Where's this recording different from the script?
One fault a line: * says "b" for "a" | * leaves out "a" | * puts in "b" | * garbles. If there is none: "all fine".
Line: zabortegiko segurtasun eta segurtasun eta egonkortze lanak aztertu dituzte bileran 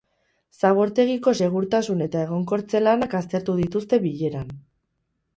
* leaves out "segurtasun eta"